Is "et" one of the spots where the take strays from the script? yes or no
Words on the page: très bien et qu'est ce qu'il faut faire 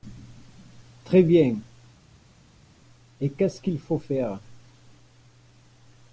no